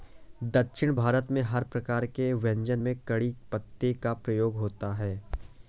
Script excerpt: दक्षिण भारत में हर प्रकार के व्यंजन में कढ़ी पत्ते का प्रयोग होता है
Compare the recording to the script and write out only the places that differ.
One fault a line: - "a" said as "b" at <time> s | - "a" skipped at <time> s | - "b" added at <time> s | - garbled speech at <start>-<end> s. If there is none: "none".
none